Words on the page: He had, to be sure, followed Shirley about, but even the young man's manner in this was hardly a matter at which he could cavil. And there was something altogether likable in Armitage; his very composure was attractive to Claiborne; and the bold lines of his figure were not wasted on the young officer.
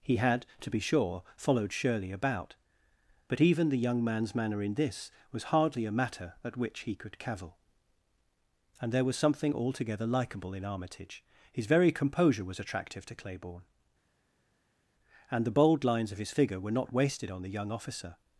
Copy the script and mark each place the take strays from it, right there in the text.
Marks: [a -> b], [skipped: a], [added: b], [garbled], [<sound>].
He had, to be sure, followed Shirley about, but even the young man's manner in this was hardly a matter at which he could cavil. And there was something altogether likable in Armitage; his very composure was attractive to Claiborne; and the bold lines of his figure were not wasted on the young officer.